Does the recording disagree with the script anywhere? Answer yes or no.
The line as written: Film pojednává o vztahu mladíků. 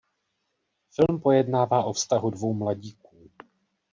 yes